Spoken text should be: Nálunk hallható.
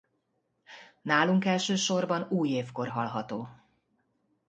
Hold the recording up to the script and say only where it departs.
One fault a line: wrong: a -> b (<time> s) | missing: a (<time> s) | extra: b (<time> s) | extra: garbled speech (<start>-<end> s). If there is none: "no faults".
extra: elsősorban újévkor (1.4 s)